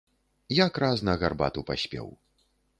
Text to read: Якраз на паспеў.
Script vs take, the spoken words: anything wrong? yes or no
yes